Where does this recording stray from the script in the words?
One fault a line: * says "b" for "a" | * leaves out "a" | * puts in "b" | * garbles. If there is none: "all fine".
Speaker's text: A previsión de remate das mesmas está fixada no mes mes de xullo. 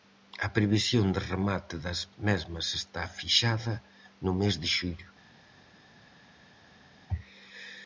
* leaves out "mes"